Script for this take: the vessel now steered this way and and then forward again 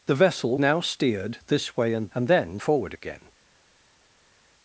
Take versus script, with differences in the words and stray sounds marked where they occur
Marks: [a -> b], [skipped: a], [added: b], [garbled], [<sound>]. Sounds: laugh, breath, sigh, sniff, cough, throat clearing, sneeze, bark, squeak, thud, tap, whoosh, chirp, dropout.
the vessel now steered this way and and then forward again